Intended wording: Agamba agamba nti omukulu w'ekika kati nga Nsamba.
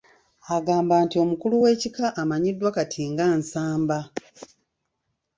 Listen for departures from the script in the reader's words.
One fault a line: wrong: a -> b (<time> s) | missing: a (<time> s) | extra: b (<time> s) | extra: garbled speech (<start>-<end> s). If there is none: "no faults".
missing: agamba (0.9 s)
extra: amanyiddwa (2.2 s)